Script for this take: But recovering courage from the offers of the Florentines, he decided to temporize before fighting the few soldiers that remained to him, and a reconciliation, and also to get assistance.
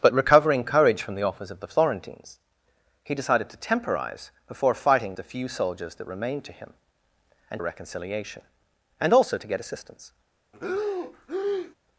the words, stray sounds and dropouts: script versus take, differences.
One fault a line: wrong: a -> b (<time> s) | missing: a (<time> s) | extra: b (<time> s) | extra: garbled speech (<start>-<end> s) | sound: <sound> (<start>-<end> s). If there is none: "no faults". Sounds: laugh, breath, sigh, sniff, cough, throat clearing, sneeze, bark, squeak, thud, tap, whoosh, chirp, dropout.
sound: breath (10.5-11.8 s)